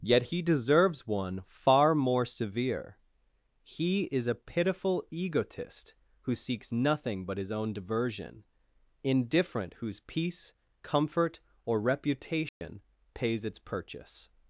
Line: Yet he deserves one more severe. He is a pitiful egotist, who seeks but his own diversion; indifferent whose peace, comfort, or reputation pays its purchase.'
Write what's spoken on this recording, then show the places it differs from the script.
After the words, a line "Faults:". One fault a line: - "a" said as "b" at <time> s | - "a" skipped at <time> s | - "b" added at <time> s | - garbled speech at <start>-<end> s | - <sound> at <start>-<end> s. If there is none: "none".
Yet he deserves one far more severe. He is a pitiful egotist, who seeks nothing but his own diversion; indifferent whose peace, comfort, or reputation pays its purchase.'
Faults:
- "far" added at 1.5 s
- "nothing" added at 6.7 s
- dropout at 12.5-12.6 s